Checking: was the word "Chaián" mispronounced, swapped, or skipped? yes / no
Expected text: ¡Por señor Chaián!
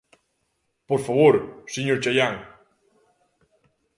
no